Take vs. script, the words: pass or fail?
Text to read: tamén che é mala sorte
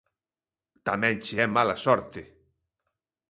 pass